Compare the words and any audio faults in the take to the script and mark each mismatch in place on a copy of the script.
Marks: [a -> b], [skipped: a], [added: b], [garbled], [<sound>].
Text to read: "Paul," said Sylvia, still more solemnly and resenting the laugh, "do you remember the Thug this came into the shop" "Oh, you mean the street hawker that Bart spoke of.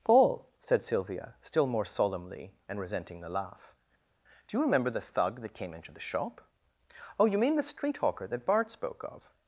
"Paul," said Sylvia, still more solemnly and resenting the laugh, "do you remember the Thug [this -> that] came into the shop" "Oh, you mean the street hawker that Bart spoke of.